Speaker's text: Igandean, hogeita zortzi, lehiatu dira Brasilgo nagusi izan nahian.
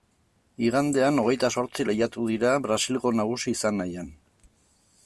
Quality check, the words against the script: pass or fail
pass